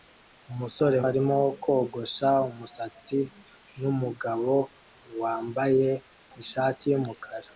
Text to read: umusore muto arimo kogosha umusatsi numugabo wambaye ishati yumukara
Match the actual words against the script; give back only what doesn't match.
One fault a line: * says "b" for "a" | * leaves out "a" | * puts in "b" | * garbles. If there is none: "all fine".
* leaves out "muto"